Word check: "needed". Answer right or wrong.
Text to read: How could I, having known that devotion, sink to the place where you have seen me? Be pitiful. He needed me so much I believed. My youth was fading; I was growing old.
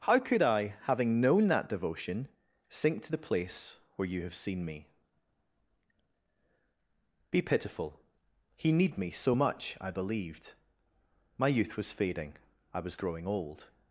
wrong